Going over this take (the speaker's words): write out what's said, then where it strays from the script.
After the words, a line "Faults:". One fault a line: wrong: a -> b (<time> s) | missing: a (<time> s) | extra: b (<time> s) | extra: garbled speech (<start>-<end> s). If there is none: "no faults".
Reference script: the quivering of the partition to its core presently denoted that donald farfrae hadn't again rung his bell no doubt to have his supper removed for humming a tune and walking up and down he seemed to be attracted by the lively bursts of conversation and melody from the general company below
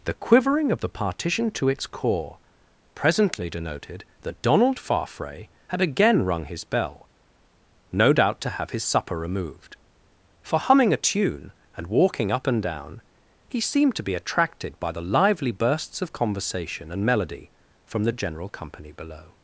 the quivering of the partition to its core presently denoted that donald farfrae had again rung his bell no doubt to have his supper removed for humming a tune and walking up and down he seemed to be attracted by the lively bursts of conversation and melody from the general company below
Faults:
wrong: hadn't -> had (5.7 s)